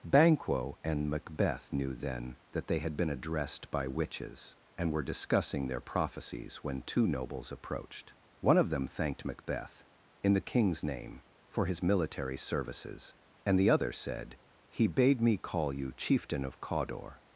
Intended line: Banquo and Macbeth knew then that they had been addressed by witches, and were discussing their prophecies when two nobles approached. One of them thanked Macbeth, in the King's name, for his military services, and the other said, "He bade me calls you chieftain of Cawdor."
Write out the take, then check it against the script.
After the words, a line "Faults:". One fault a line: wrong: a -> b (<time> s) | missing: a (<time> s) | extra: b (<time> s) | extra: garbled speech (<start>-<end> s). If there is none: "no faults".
Banquo and Macbeth knew then that they had been addressed by witches, and were discussing their prophecies when two nobles approached. One of them thanked Macbeth, in the King's name, for his military services, and the other said, "He bade me call you chieftain of Cawdor."
Faults:
wrong: calls -> call (15.4 s)